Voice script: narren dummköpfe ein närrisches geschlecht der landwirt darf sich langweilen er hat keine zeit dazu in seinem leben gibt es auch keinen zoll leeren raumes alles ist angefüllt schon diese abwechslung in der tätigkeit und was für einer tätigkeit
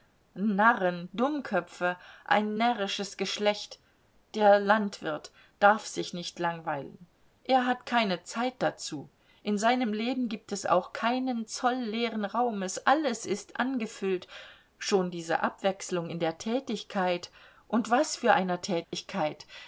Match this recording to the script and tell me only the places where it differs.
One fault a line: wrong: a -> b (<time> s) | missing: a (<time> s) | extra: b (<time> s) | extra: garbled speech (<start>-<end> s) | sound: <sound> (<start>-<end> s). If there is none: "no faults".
extra: nicht (6.1 s)
sound: dropout (18.8-18.9 s)